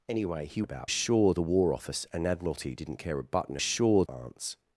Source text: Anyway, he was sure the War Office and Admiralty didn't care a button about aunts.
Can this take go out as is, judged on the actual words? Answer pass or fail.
fail